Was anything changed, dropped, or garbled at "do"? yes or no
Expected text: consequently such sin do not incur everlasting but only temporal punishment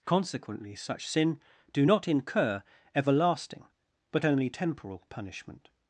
no